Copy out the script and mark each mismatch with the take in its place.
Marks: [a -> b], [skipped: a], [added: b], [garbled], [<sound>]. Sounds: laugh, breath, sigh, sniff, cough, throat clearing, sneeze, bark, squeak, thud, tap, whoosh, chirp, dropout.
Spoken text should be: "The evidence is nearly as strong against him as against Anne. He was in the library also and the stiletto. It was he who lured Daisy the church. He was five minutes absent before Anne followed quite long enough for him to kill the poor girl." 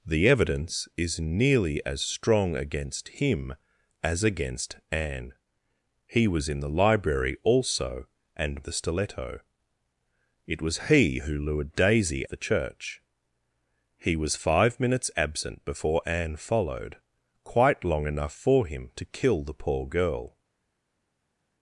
"The evidence is nearly as strong against him as against Anne. He was in the library also and the stiletto. It was he who lured Daisy the church. He was five minutes absent before Anne followed quite long enough for him to kill the poor girl."